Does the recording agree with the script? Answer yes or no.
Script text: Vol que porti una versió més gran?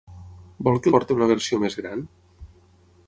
yes